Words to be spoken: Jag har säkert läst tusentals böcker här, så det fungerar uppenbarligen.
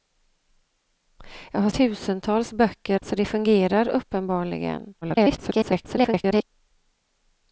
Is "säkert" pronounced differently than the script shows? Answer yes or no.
yes